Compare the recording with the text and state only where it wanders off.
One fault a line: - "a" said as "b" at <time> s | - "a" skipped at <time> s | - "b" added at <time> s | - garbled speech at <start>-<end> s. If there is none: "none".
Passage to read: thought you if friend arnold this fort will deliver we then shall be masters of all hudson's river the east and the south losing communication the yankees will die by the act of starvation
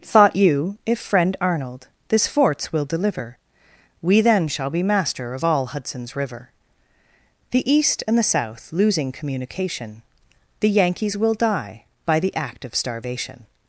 - "fort" said as "forts" at 2.3 s
- "masters" said as "master" at 4.8 s